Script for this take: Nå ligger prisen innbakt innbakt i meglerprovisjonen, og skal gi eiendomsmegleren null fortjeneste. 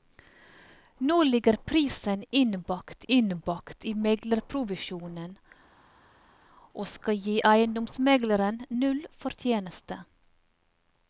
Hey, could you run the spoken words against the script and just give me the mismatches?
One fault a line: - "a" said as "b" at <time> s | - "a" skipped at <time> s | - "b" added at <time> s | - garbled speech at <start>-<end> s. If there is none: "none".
none